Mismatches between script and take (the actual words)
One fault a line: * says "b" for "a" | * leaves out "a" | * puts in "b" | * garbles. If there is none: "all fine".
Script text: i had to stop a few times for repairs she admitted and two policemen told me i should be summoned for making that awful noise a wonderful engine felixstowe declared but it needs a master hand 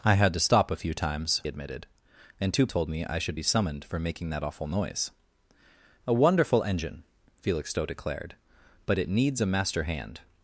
* leaves out "for repairs she"
* leaves out "policemen"